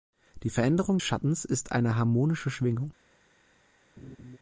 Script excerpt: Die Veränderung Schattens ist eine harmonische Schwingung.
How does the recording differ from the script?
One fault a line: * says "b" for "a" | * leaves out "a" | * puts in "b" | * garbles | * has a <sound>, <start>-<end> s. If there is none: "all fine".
* has a laugh, 4.0-4.4 s